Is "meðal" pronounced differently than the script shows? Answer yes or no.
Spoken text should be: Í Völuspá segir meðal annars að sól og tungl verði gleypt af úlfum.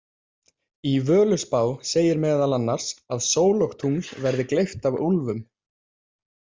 no